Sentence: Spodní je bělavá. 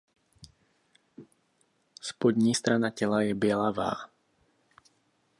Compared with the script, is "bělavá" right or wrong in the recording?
right